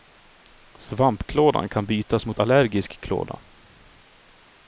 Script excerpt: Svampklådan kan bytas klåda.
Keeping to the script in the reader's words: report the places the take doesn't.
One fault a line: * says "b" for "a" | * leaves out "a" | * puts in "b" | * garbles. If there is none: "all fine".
* puts in "mot allergisk"